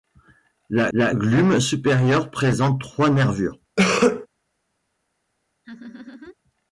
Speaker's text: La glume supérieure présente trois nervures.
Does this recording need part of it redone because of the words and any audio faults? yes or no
yes